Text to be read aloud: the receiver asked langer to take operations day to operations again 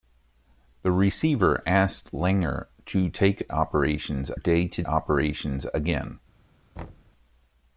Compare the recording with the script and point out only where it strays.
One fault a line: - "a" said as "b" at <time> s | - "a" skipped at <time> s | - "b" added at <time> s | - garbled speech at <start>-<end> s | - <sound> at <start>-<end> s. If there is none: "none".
- thud at 6.8-7.1 s